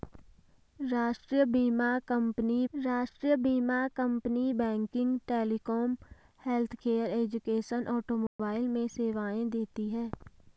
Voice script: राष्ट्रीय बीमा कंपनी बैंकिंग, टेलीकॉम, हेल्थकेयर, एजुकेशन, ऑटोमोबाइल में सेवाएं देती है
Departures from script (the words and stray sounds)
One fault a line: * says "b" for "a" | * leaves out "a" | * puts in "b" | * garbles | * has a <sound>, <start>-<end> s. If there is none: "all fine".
* puts in "राष्ट्रीय बीमा कंपनी"
* has a dropout, 8.3-8.4 s